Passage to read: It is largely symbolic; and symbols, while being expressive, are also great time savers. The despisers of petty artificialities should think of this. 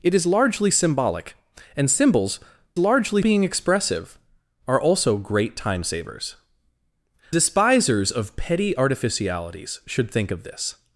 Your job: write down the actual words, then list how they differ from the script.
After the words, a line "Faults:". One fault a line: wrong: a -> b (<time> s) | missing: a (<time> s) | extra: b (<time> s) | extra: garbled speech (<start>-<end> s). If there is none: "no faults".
It is largely symbolic; and symbols, largely being expressive, are also great time savers. Despisers of petty artificialities should think of this.
Faults:
wrong: while -> largely (2.8 s)
missing: The (6.4 s)